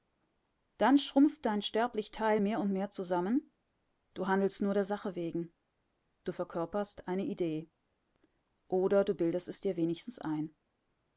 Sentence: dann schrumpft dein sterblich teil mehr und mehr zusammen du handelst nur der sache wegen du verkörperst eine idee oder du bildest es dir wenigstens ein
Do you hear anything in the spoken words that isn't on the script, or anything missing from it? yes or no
no